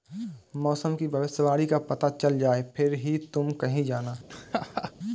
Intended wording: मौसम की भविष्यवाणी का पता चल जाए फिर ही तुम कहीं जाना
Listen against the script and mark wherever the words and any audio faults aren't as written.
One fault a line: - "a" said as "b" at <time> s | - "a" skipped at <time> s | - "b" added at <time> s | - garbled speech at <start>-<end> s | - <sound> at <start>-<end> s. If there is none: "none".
- laugh at 4.3-4.9 s